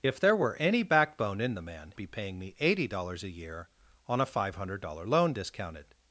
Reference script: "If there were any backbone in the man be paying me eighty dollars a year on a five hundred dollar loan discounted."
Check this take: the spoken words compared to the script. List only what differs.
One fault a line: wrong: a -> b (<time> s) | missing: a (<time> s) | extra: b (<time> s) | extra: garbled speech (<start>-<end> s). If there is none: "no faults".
no faults